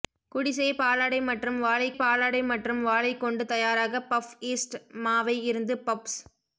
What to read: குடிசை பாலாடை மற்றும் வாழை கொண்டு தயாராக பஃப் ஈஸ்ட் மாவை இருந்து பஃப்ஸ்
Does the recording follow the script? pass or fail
fail